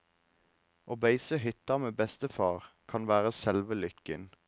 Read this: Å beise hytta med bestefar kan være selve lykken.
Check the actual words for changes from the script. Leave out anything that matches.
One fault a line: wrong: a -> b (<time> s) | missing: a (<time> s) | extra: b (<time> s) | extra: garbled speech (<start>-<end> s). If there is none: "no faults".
no faults